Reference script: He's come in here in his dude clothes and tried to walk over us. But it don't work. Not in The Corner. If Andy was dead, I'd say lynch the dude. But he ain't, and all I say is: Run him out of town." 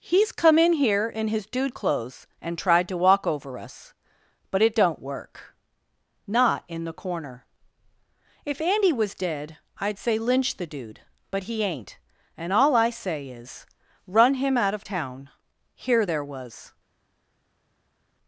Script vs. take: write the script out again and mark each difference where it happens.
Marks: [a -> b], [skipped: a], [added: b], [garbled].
He's come in here in his dude clothes and tried to walk over us. But it don't work. Not in The Corner. If Andy was dead, I'd say lynch the dude. But he ain't, and all I say is: Run him out of town." [added: Here there was]